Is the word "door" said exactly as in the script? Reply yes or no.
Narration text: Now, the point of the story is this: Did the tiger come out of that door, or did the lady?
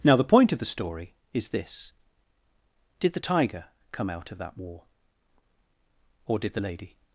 no